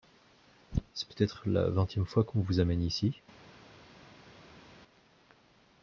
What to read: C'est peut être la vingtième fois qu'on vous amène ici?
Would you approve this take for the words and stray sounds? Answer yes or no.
yes